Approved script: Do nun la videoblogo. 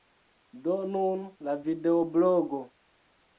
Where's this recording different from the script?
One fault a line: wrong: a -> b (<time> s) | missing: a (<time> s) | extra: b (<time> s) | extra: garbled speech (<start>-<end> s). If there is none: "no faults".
no faults